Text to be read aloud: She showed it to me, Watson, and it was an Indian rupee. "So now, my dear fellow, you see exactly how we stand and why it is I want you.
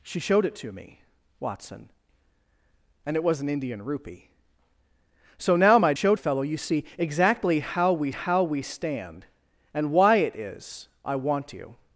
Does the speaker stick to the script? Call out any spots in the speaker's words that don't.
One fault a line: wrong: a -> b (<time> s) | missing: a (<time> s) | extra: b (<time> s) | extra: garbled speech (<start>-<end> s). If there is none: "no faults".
wrong: dear -> showed (5.9 s)
extra: how we (8.1 s)